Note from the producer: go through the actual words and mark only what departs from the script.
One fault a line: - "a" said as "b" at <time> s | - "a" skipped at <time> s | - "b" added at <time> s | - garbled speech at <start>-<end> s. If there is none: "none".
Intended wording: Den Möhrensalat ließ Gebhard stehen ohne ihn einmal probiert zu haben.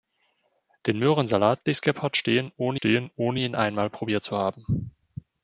- "stehen ohne" added at 2.7 s